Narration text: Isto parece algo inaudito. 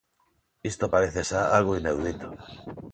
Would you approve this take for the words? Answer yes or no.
no